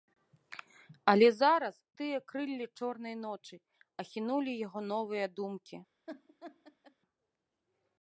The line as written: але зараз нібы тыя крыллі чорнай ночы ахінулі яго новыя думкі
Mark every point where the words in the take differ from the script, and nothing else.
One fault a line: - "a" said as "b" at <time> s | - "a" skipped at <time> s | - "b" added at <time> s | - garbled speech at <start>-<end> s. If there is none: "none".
- "нібы" skipped at 1.8 s